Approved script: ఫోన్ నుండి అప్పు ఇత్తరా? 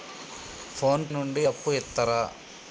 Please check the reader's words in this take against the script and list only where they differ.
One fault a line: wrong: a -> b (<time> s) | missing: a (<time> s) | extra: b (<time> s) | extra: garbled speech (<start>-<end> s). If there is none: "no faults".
no faults